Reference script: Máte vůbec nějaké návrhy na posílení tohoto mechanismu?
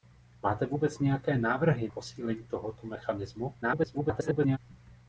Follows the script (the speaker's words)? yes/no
no